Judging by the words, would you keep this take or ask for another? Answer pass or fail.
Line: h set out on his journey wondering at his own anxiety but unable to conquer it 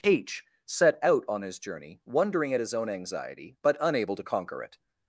pass